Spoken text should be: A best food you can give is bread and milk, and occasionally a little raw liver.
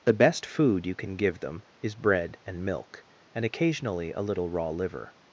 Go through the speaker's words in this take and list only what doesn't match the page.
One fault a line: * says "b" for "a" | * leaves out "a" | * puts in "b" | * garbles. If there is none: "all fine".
* says "The" for "A"
* puts in "them"